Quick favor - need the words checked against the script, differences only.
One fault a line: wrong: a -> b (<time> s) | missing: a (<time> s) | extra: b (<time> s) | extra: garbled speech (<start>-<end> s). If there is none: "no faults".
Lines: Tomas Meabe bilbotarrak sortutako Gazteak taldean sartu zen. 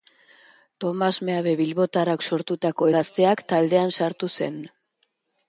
no faults